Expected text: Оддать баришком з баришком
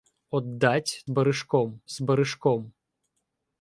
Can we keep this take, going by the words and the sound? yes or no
yes